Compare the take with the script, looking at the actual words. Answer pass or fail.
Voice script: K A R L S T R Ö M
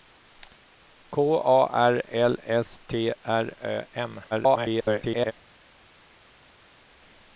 fail